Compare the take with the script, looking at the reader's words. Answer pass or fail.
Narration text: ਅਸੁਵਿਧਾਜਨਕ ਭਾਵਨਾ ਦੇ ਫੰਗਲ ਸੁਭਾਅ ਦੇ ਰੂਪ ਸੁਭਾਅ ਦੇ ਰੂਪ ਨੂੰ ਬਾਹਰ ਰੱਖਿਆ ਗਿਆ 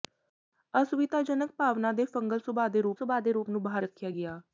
pass